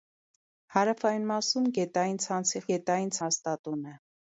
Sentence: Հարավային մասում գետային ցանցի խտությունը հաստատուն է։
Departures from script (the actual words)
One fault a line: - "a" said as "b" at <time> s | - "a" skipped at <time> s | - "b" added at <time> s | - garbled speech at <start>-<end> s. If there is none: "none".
- "խտությունը" said as "գետային" at 2.7 s